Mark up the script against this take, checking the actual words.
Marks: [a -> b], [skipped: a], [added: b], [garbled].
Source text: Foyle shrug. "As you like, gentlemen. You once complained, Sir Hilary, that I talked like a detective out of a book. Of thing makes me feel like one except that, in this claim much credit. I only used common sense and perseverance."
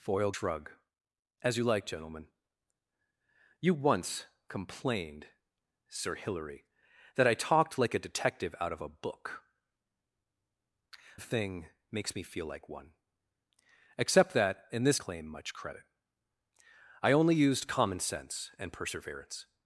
Foyle shrug. "As you like, gentlemen. You once complained, Sir Hilary, that I talked like a detective out of a book. Of thing makes me feel like one except that, in this claim much credit. I only used common sense and perseverance."